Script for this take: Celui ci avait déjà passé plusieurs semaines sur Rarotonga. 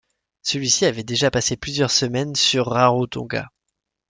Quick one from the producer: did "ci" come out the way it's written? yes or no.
yes